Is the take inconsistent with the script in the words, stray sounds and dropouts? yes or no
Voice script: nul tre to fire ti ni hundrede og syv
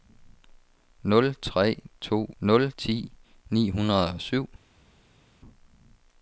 yes